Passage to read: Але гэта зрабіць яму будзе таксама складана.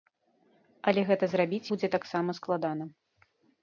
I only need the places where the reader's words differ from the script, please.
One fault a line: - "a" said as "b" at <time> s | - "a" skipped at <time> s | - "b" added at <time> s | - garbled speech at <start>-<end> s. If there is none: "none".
- "яму" skipped at 1.7 s